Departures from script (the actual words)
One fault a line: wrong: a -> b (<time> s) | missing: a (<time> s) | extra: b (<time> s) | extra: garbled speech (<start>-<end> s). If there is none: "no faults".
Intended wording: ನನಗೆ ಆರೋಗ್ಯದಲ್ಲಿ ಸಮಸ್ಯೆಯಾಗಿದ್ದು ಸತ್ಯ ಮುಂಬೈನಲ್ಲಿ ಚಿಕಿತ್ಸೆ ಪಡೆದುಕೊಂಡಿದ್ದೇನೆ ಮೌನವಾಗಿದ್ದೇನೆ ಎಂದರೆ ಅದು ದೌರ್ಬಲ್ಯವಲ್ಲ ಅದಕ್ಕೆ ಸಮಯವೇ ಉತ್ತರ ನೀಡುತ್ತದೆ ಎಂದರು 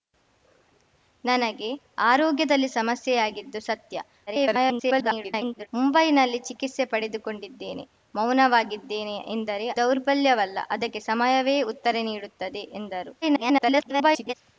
extra: garbled speech (4.3-5.7 s)
missing: ಅದು (9.7 s)
extra: garbled speech (13.2-14.3 s)